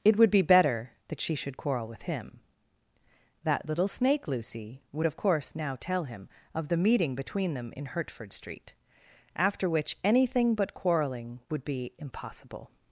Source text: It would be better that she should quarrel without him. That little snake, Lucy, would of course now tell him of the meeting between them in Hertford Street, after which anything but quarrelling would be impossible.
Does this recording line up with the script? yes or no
no